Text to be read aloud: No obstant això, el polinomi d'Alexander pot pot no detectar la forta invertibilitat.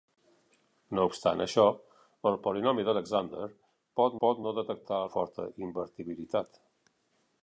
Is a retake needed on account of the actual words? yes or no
no